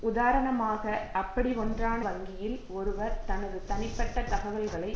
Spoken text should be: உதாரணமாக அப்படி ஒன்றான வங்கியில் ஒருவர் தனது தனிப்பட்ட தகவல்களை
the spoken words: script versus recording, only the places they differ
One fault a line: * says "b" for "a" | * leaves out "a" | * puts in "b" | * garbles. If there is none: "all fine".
all fine